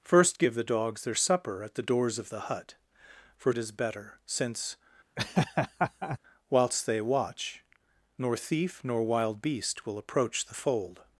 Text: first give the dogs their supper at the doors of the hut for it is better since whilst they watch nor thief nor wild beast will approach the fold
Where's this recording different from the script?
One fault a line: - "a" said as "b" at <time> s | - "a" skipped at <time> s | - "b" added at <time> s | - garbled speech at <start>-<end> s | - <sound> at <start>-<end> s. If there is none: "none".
- laugh at 5.2-6.2 s